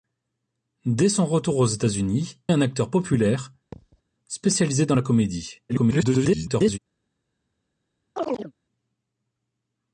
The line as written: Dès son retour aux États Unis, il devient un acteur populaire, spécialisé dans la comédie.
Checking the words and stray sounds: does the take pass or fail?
fail